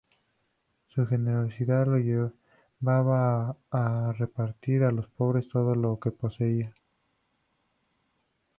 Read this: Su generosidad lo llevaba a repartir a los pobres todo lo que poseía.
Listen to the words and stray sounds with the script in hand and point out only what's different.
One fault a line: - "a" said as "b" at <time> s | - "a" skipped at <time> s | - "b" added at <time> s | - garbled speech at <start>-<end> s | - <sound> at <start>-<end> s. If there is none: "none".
none